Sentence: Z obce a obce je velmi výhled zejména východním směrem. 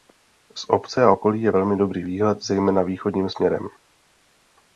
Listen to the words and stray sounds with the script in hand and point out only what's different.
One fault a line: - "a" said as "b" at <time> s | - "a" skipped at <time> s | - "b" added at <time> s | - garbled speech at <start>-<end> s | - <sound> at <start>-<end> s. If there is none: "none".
- "obce" said as "okolí" at 1.1 s
- "dobrý" added at 1.8 s